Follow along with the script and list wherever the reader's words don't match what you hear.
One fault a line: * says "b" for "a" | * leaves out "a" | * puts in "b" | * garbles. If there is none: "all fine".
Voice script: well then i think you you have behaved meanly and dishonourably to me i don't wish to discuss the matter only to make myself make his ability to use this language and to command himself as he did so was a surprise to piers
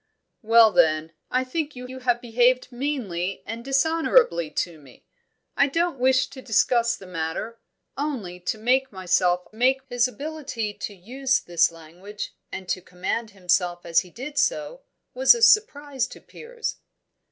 all fine